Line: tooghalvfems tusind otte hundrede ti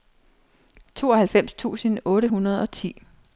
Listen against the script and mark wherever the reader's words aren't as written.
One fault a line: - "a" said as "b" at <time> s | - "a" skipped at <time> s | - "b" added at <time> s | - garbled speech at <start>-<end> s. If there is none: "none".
- "og" added at 2.6 s